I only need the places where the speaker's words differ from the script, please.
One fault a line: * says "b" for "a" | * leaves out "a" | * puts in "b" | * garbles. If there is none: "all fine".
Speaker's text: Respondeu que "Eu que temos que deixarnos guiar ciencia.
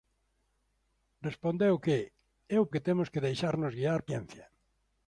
all fine